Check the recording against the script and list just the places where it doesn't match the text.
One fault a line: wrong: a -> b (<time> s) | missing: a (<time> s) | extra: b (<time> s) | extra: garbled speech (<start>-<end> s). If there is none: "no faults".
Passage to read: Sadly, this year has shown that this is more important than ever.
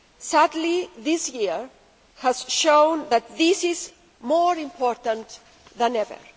no faults